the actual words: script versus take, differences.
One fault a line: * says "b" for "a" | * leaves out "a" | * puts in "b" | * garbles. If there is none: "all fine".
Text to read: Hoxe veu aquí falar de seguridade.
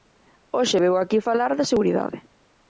all fine